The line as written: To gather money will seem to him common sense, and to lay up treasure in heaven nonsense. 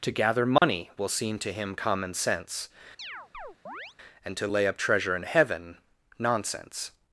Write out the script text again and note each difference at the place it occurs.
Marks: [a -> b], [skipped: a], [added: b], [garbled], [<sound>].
To gather money [dropout] will seem to him common sense, [chirp] and to lay up treasure in heaven nonsense.